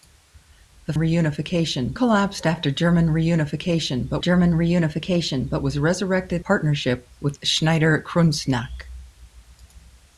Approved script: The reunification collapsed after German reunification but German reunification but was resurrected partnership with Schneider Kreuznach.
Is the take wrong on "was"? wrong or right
right